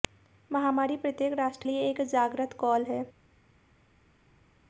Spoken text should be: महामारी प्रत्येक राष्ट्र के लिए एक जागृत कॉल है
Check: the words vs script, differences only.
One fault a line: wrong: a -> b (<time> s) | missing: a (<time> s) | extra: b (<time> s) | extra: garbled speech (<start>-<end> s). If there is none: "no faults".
missing: के (1.7 s)